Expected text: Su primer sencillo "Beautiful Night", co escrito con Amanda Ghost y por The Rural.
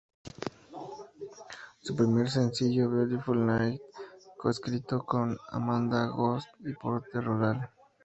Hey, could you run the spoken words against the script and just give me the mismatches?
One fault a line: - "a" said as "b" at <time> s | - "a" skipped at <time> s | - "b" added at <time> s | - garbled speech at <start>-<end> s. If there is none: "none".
none